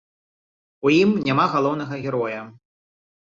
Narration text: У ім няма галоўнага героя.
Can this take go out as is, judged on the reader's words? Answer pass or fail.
pass